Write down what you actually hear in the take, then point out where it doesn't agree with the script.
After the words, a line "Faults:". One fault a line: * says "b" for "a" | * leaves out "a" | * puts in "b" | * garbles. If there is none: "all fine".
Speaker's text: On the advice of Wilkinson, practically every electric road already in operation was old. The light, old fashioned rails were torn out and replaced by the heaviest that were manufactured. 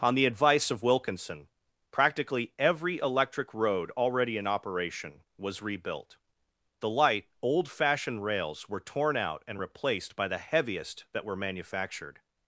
On the advice of Wilkinson, practically every electric road already in operation was rebuilt. The light, old fashioned rails were torn out and replaced by the heaviest that were manufactured.
Faults:
* says "rebuilt" for "old"